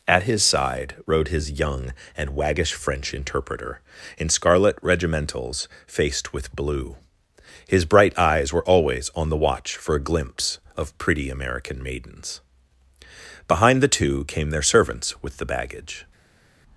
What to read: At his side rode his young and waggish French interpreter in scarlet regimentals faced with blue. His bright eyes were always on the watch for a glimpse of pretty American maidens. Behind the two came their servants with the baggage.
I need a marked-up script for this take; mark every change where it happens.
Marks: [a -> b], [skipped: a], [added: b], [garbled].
At his side rode his young and waggish French interpreter in scarlet regimentals faced with blue. His bright eyes were always on the watch for a glimpse of pretty American maidens. Behind the two came their servants with the baggage.